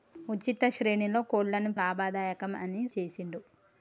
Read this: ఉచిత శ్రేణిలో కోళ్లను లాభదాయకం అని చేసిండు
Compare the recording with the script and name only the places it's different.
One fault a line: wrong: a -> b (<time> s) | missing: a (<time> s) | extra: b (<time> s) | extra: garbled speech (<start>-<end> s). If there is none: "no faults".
no faults